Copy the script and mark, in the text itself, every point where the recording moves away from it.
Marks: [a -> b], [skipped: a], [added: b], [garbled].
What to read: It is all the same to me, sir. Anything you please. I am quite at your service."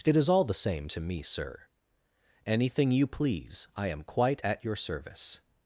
It is all the same to me, sir. Anything you please. I am quite at your service."